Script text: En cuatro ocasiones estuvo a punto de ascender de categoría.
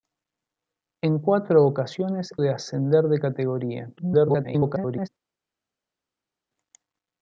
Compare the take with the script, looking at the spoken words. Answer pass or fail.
fail